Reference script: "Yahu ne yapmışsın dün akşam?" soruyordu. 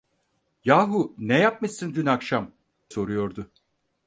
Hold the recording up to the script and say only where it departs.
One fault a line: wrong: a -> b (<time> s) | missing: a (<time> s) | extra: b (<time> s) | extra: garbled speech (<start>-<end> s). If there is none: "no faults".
no faults